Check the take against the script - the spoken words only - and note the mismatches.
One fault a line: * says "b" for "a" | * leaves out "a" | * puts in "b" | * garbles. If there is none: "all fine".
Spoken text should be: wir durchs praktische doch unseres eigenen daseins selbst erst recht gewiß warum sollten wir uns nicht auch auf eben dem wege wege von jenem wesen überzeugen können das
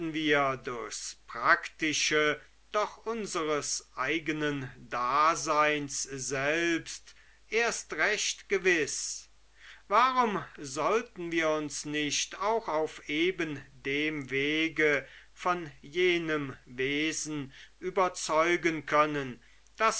* leaves out "wege"